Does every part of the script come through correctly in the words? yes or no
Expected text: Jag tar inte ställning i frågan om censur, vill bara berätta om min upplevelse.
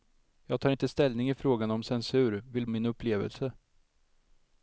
no